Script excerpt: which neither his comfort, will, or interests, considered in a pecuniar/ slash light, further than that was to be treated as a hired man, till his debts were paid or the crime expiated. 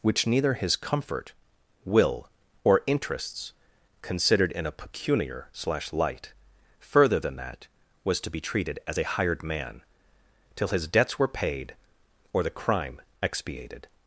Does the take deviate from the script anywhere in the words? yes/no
no